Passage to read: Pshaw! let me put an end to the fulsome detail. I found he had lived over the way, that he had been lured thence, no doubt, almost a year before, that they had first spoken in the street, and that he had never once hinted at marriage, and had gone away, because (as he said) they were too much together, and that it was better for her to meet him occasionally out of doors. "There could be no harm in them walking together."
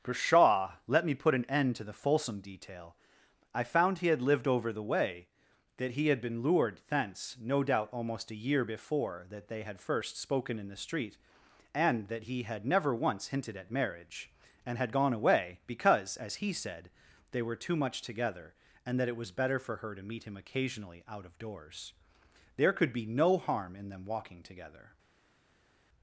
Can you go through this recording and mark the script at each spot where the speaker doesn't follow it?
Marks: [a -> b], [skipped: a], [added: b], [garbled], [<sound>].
Pshaw! let me put an end to the fulsome detail. I found he had lived over the way, that he had been lured thence, no doubt, almost a year before, that they had first spoken in the street, and that he had never once hinted at marriage, and had gone away, because (as he said) they were too much together, and that it was better for her to meet him occasionally out of doors. "There could be no harm in them walking together."